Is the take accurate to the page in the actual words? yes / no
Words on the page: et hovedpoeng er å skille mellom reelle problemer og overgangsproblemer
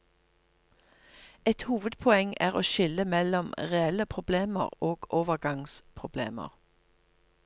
yes